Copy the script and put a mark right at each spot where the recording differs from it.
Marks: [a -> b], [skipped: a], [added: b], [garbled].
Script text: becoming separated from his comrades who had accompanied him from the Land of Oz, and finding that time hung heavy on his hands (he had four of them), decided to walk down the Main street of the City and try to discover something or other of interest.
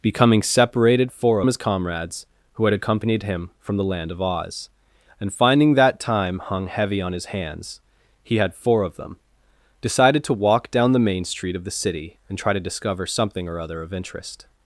becoming separated [from -> four] his comrades who had accompanied him from the Land of Oz, and finding that time hung heavy on his hands (he had four of them), decided to walk down the Main street of the City and try to discover something or other of interest.